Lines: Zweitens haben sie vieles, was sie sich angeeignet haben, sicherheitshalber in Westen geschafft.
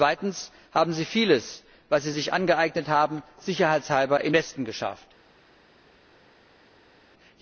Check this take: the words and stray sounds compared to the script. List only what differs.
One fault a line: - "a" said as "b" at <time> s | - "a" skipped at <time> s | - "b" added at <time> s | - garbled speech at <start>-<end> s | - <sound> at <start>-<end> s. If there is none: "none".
none